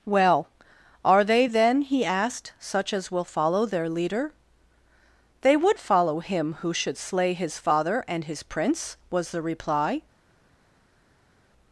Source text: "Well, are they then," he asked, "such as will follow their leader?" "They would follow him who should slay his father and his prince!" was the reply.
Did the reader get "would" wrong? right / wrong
right